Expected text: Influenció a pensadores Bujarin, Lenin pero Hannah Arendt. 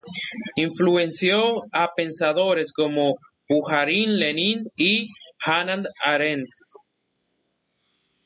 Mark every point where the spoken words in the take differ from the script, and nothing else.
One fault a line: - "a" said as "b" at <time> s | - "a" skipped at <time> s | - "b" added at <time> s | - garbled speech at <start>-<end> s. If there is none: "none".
- "como" added at 2.7 s
- "pero" said as "y" at 4.8 s